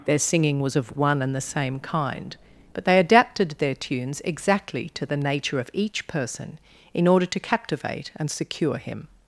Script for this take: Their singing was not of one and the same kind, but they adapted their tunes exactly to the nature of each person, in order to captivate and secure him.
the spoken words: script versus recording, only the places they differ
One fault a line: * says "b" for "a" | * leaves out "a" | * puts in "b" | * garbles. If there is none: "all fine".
* leaves out "not"